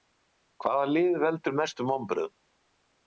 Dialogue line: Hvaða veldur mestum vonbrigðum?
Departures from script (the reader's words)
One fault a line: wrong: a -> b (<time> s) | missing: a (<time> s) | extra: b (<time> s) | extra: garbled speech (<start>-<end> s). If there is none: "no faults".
extra: lið (0.9 s)